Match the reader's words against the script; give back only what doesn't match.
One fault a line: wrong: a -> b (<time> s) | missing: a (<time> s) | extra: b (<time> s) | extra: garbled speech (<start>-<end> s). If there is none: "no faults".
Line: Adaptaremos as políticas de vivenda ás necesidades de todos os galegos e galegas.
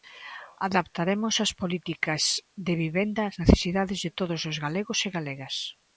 no faults